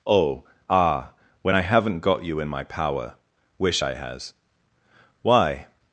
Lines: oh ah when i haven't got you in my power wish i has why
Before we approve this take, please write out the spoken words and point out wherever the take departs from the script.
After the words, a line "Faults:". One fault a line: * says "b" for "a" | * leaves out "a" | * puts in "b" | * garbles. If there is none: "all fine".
oh ah when i haven't got you in my power wish i has why
Faults:
all fine